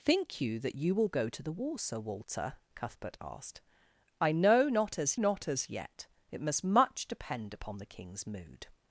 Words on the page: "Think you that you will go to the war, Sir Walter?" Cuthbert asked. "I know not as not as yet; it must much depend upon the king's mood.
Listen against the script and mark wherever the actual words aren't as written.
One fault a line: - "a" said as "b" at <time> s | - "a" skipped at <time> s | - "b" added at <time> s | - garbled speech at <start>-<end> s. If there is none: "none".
none